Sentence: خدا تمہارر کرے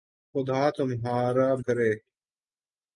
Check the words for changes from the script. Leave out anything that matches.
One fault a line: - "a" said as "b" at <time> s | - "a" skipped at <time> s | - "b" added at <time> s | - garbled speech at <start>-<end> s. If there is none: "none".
none